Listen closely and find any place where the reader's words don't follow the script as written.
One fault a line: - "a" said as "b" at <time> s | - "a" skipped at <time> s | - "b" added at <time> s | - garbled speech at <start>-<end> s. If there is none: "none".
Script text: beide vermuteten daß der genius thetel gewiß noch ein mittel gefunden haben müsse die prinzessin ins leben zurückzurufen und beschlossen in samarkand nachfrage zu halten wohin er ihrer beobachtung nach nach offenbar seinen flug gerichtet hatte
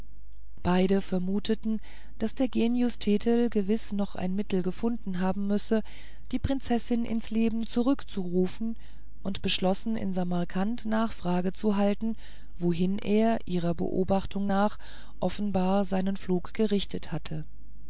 - "nach" skipped at 14.8 s